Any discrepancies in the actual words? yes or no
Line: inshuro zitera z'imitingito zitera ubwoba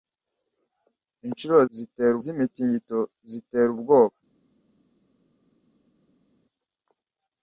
no